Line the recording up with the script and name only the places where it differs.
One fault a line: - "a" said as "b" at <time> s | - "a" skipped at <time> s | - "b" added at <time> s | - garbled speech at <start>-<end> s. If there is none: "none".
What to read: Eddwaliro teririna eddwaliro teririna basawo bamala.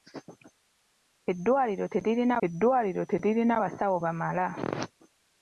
none